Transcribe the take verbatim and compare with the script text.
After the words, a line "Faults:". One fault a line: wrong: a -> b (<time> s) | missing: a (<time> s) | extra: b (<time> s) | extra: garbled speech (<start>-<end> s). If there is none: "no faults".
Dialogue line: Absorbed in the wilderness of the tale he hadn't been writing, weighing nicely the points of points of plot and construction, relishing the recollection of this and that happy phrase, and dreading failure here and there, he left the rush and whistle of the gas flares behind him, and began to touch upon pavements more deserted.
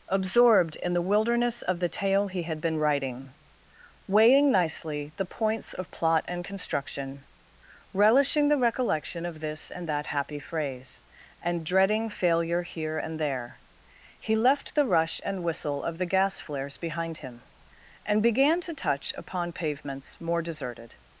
Absorbed in the wilderness of the tale he had been writing, weighing nicely the points of plot and construction, relishing the recollection of this and that happy phrase, and dreading failure here and there, he left the rush and whistle of the gas flares behind him, and began to touch upon pavements more deserted.
Faults:
wrong: hadn't -> had (2.4 s)
missing: points of (5.9 s)